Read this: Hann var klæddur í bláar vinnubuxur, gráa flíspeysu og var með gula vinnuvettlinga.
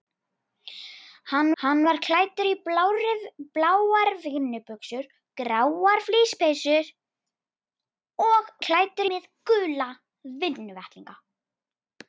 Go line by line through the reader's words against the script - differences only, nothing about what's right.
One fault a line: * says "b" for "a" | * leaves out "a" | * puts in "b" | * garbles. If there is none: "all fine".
* puts in "hann"
* says "klæddur" for "var"